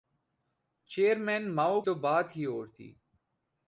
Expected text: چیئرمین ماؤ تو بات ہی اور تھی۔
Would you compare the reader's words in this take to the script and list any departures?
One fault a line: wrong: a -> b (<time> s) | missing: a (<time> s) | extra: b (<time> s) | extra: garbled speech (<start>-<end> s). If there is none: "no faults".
no faults